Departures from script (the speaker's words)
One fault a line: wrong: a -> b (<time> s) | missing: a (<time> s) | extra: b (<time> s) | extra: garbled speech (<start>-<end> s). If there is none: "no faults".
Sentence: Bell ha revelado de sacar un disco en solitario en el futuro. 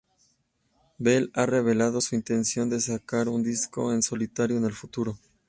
extra: su intención (2.0 s)